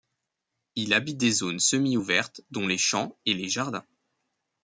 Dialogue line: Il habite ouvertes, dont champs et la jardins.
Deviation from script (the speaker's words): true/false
true